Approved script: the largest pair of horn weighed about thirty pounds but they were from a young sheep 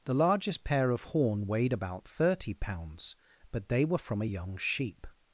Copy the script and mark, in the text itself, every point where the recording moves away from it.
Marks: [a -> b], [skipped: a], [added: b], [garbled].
the largest pair of horn weighed about thirty pounds but they were from a young sheep